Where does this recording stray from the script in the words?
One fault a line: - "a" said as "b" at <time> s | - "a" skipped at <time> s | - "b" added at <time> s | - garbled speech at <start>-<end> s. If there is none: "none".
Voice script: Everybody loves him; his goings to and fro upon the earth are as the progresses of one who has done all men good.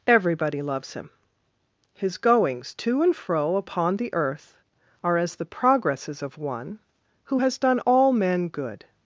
none